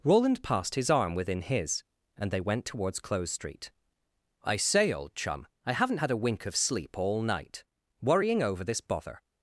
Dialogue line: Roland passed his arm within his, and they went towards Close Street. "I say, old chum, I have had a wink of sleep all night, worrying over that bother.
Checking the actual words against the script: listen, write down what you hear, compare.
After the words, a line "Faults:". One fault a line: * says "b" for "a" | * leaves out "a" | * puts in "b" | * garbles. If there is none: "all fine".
Roland passed his arm within his, and they went towards Close Street. "I say, old chum, I haven't had a wink of sleep all night, worrying over this bother.
Faults:
* says "haven't" for "have"
* says "this" for "that"